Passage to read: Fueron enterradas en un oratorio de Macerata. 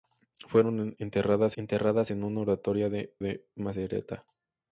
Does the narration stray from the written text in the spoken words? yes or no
yes